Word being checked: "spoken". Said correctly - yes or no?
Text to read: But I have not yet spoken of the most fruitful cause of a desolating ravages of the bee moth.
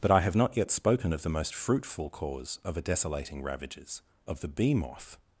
yes